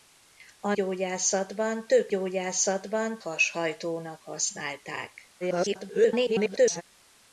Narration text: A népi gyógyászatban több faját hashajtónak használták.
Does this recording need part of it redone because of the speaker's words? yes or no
yes